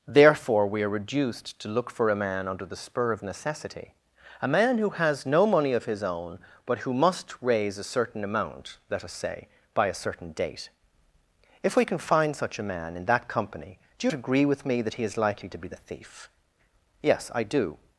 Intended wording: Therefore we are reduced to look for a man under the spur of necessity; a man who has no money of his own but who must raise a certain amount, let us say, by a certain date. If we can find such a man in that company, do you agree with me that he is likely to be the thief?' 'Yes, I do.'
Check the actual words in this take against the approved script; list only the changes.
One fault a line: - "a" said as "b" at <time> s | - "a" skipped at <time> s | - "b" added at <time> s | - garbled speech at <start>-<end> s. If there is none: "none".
none